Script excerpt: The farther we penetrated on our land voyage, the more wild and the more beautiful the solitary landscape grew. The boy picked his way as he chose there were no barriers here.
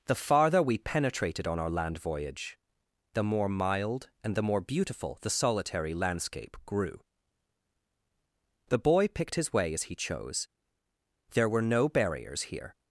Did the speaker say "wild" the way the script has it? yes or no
no